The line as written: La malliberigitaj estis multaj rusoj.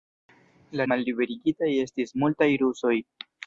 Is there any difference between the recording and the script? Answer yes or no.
no